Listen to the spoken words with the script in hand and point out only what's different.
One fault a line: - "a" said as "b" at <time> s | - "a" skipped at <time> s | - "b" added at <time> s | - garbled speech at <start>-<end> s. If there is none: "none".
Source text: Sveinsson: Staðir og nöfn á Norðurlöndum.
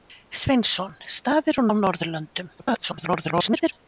- "nöfn" skipped at 1.7 s
- garbled speech at 2.6-3.7 s